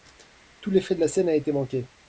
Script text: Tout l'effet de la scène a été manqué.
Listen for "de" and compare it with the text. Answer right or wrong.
right